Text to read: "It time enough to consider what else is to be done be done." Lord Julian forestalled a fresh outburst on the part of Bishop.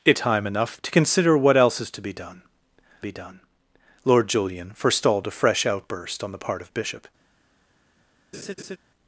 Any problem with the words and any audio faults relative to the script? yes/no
yes